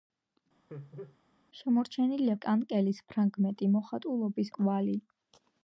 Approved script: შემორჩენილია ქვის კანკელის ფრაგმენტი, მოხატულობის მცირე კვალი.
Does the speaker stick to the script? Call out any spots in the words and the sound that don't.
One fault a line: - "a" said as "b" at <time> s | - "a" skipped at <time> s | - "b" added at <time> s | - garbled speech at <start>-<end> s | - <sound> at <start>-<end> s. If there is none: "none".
- laugh at 0.7-1.2 s
- "ქვის" skipped at 2.3 s
- "მცირე" skipped at 4.5 s